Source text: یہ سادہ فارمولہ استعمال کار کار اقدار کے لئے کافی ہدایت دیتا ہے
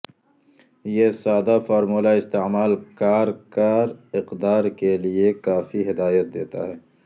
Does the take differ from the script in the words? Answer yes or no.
no